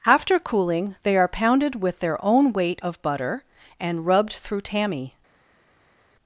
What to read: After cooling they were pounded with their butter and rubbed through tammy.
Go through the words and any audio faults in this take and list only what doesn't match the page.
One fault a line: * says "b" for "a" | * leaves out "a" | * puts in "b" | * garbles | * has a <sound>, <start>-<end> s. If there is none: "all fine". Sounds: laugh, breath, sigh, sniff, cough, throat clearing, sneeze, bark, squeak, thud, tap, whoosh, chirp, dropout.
* says "are" for "were"
* puts in "own weight of"